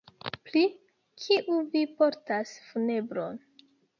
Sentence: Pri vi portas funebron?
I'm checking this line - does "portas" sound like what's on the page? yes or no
yes